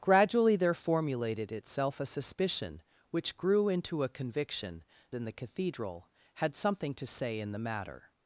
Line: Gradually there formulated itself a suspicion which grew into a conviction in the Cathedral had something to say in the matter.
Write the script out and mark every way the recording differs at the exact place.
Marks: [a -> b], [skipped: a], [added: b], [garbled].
Gradually there formulated itself a suspicion which grew into a conviction in the Cathedral had something to say in the matter.